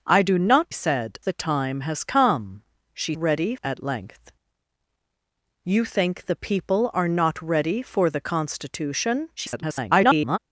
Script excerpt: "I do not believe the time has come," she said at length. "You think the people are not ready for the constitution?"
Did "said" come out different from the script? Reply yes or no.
yes